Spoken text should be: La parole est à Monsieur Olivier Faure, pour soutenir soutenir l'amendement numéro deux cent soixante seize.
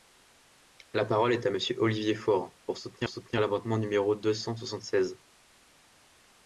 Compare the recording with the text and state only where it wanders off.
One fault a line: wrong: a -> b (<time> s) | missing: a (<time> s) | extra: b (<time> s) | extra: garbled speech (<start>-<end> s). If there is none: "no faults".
no faults